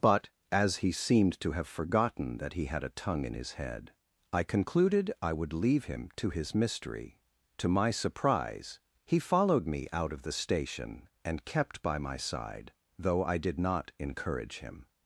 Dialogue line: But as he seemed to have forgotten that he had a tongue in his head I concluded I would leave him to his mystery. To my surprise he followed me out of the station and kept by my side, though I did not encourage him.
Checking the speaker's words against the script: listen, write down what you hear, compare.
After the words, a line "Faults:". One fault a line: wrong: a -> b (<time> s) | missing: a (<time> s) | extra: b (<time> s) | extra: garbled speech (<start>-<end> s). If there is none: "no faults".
But as he seemed to have forgotten that he had a tongue in his head I concluded I would leave him to his mystery. To my surprise he followed me out of the station and kept by my side, though I did not encourage him.
Faults:
no faults